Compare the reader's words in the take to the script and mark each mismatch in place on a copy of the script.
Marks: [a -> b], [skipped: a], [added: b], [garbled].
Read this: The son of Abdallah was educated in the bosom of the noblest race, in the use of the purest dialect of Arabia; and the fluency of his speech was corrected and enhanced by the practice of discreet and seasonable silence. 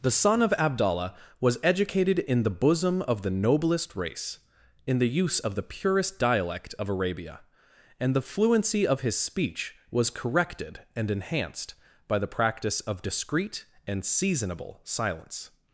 The son of Abdallah was educated in the bosom of the noblest race, in the use of the purest dialect of Arabia; and the fluency of his speech was corrected and enhanced by the practice of discreet and seasonable silence.